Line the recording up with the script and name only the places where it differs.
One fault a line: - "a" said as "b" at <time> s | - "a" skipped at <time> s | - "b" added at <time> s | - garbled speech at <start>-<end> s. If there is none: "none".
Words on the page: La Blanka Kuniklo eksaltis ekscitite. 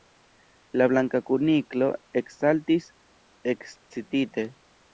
none